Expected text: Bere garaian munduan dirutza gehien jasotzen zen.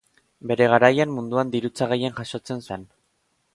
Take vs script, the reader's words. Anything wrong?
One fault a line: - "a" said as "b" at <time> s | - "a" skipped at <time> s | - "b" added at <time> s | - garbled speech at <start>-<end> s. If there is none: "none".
none